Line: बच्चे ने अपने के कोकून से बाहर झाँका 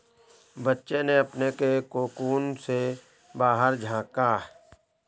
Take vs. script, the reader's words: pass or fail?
pass